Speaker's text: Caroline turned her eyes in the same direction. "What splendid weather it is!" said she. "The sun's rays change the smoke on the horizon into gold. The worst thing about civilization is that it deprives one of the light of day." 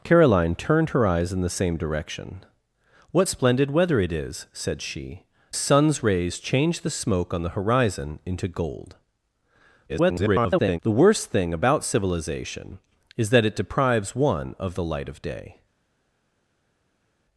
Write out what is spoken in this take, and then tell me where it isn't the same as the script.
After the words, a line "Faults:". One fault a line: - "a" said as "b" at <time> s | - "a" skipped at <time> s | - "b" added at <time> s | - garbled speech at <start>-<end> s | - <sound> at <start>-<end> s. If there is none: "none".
Caroline turned her eyes in the same direction. "What splendid weather it is!" said she. "Sun's rays change the smoke on the horizon into gold. [garbled] The worst thing about civilization is that it deprives one of the light of day."
Faults:
- "The" skipped at 5.2 s
- garbled speech at 9.9-10.8 s